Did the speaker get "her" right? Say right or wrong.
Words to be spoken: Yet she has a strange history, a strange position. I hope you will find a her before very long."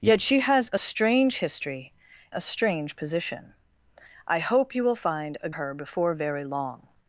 right